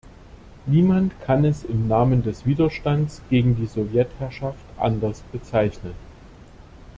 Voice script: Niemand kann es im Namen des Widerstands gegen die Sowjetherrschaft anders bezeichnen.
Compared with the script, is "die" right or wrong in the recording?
right